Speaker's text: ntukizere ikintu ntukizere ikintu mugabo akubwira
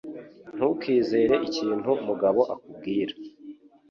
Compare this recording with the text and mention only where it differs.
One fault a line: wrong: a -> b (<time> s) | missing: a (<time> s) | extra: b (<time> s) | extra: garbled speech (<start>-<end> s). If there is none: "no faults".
missing: ntukizere ikintu (1.9 s)